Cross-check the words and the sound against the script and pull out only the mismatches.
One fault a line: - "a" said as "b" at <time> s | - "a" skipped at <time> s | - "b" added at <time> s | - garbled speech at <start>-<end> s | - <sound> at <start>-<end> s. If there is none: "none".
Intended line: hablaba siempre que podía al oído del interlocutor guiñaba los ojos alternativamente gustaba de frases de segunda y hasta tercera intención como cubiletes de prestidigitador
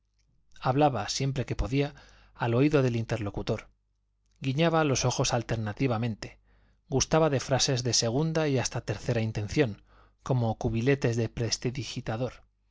none